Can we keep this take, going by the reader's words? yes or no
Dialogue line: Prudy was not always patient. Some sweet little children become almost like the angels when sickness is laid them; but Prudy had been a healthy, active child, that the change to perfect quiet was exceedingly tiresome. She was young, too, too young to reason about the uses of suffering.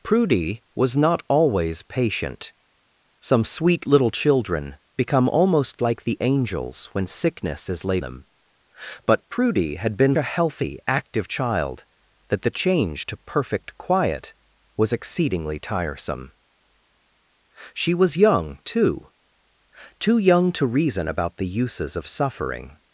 yes